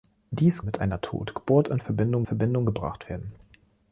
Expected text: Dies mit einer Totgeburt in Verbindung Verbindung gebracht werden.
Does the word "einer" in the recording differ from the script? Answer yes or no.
no